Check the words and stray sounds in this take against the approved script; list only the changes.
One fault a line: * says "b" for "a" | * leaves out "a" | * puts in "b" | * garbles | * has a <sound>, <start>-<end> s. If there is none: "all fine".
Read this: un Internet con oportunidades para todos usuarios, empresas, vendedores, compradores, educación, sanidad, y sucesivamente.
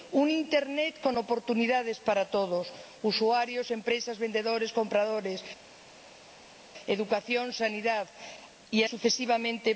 all fine